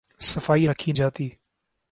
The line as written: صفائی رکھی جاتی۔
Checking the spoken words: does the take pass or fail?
pass